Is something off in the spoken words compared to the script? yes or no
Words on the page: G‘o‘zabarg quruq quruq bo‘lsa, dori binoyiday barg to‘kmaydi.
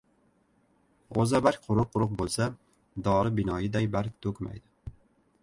no